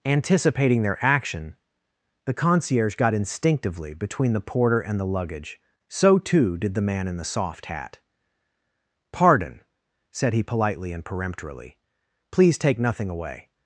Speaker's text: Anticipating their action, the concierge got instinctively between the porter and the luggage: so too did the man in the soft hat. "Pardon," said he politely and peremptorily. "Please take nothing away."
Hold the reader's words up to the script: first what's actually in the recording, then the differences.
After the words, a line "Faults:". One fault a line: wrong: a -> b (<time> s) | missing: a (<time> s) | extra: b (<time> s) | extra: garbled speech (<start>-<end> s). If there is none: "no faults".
Anticipating their action, the concierge got instinctively between the porter and the luggage: so too did the man in the soft hat. "Pardon," said he politely and peremptorily. "Please take nothing away."
Faults:
no faults